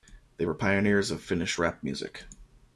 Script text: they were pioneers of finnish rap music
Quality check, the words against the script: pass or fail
pass